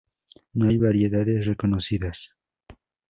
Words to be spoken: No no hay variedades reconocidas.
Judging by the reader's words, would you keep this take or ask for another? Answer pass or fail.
fail